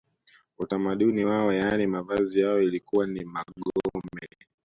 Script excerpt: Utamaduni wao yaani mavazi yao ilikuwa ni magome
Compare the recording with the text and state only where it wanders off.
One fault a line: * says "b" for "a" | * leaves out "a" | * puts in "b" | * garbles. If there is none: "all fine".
all fine